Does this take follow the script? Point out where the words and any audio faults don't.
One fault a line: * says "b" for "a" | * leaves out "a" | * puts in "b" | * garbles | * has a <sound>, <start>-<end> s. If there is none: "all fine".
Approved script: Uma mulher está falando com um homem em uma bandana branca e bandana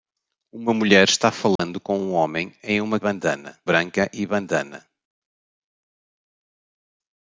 * has a dropout, 1.6-1.6 s